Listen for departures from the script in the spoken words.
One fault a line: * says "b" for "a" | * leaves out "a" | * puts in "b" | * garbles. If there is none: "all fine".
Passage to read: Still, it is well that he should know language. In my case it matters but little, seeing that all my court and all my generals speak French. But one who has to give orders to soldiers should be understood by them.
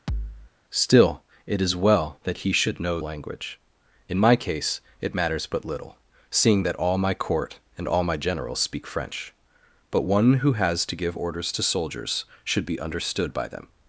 all fine